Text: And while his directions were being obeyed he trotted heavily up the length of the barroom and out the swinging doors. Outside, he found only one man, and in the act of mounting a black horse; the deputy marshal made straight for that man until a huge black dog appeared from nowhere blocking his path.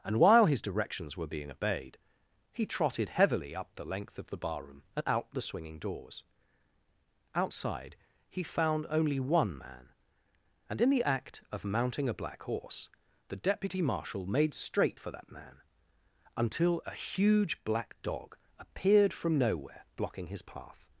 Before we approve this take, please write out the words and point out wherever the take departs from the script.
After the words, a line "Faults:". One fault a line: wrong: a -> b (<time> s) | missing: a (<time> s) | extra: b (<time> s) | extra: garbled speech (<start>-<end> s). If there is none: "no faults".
And while his directions were being obeyed he trotted heavily up the length of the barroom and out the swinging doors. Outside, he found only one man, and in the act of mounting a black horse; the deputy marshal made straight for that man until a huge black dog appeared from nowhere blocking his path.
Faults:
no faults